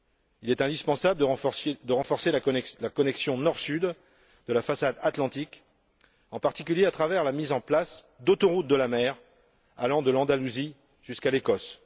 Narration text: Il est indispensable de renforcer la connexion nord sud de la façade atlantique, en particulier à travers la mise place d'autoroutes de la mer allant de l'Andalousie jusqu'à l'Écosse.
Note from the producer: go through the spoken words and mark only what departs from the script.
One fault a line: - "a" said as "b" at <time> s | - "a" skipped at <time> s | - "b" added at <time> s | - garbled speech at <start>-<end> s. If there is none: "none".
- "en" added at 7.5 s